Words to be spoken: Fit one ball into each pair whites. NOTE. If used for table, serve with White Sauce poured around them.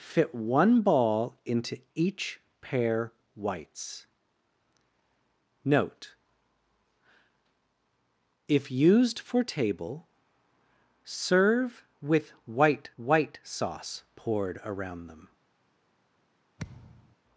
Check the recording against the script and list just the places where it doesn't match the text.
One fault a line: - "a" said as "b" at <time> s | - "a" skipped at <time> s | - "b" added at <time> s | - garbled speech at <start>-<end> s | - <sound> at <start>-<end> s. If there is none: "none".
- "White" added at 13.0 s
- thud at 16.6-17.2 s